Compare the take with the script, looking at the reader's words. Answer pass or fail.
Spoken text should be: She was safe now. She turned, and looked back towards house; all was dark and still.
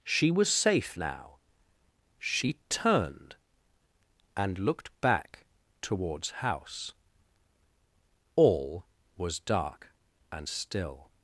pass